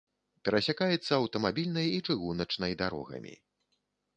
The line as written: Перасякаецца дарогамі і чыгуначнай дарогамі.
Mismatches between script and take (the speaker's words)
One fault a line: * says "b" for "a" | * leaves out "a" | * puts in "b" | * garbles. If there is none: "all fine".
* says "аўтамабільнай" for "дарогамі"